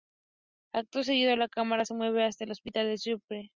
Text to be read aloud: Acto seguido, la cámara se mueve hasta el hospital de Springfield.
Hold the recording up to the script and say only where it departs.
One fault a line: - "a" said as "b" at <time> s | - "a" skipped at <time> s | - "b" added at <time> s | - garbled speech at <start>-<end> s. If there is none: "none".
none